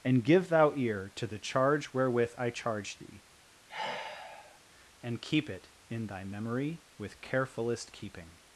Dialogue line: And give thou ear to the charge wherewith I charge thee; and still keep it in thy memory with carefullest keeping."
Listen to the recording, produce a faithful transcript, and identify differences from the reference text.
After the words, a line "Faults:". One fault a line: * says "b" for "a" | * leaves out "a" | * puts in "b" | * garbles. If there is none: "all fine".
And give thou ear to the charge wherewith I charge thee; and keep it in thy memory with carefullest keeping."
Faults:
* leaves out "still"